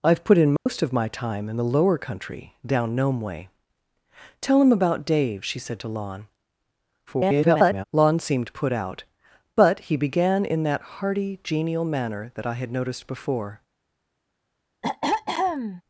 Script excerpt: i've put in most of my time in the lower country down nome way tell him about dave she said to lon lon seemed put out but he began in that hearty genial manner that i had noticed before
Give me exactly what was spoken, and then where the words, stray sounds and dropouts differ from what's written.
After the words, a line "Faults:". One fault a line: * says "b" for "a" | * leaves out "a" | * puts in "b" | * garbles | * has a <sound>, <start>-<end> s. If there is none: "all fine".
i've put in most of my time in the lower country down nome way tell him about dave she said to lon [garbled] lon seemed put out but he began in that hearty genial manner that i had noticed before
Faults:
* has a dropout, 0.6-0.7 s
* garbles
* has a throat clearing, 14.8-15.8 s